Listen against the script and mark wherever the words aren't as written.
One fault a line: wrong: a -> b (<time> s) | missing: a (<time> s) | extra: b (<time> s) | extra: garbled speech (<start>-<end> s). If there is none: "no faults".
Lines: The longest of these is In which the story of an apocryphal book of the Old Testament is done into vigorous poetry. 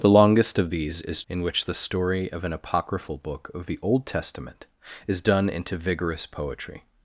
no faults